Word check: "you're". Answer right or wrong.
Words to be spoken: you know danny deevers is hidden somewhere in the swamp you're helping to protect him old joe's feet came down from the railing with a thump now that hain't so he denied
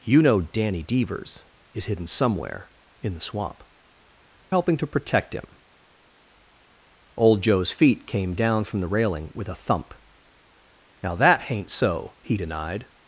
wrong